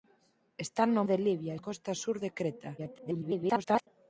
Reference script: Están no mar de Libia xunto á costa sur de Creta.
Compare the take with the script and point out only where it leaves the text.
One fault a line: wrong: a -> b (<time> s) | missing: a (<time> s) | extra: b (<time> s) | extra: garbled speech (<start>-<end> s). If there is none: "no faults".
missing: mar (1.0 s)
missing: xunto (1.5 s)
extra: garbled speech (2.8-3.9 s)